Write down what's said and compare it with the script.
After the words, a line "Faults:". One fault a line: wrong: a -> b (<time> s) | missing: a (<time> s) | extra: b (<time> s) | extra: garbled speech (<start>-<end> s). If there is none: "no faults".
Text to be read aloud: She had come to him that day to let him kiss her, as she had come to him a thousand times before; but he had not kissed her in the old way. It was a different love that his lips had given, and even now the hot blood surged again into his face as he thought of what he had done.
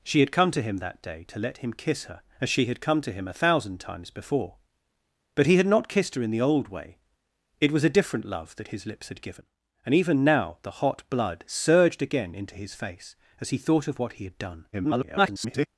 She had come to him that day to let him kiss her, as she had come to him a thousand times before; but he had not kissed her in the old way. It was a different love that his lips had given, and even now the hot blood surged again into his face as he thought of what he had done. [garbled]
Faults:
extra: garbled speech (14.7-15.7 s)